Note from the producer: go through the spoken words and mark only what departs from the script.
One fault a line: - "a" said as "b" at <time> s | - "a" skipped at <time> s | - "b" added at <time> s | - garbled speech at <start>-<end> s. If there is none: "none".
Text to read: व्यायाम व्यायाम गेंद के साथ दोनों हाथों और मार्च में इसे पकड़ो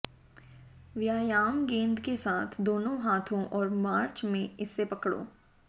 - "व्यायाम" skipped at 1.6 s